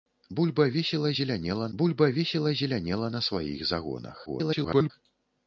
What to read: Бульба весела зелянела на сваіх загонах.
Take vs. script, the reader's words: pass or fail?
fail